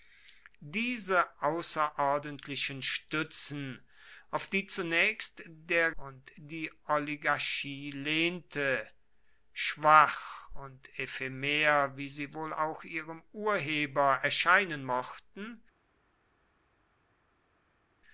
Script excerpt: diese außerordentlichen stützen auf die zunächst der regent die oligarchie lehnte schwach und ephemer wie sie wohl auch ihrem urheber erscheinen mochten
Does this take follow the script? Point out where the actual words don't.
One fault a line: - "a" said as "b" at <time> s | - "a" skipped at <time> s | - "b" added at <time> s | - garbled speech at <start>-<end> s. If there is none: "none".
- "regent" said as "und" at 6.0 s